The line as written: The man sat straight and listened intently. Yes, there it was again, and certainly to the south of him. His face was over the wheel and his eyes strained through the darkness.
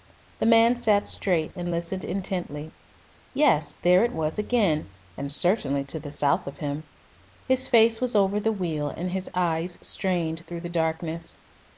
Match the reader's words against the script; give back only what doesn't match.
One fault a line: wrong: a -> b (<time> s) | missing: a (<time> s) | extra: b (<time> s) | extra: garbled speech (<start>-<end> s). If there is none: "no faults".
no faults